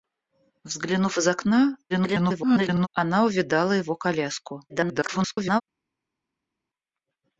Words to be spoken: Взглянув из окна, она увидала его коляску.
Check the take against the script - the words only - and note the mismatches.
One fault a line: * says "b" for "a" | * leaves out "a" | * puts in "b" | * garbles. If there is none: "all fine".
* garbles
* garbles